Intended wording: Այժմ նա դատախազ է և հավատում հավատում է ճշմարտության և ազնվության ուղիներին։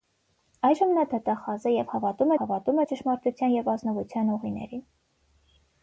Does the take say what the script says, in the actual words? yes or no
yes